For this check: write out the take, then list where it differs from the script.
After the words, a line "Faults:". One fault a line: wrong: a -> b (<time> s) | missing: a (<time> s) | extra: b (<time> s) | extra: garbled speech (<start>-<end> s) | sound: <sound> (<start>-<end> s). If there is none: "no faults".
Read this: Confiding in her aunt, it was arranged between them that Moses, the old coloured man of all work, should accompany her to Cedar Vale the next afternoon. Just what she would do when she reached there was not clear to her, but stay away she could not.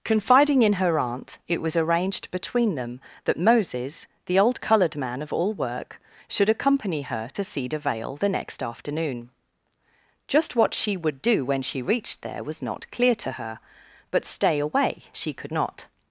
Confiding in her aunt, it was arranged between them that Moses, the old coloured man of all work, should accompany her to Cedar Vale the next afternoon. Just what she would do when she reached there was not clear to her, but stay away she could not.
Faults:
no faults